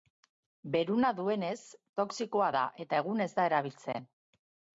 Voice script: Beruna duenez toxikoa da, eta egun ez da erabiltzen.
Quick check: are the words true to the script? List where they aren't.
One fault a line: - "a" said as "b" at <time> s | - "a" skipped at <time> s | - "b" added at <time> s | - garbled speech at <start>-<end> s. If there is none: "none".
none